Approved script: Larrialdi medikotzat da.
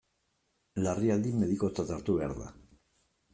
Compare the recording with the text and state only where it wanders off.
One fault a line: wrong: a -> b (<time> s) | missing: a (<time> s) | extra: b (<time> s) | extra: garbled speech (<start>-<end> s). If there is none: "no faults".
extra: hartu behar (2.0 s)